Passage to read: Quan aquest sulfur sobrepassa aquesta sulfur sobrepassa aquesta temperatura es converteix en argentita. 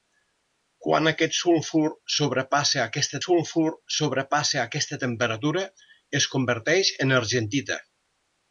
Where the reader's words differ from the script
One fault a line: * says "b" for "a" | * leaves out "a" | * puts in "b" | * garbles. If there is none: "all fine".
all fine